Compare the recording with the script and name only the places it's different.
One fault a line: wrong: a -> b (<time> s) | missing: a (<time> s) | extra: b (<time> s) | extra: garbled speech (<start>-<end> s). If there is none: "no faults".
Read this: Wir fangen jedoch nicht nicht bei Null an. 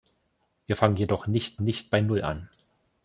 no faults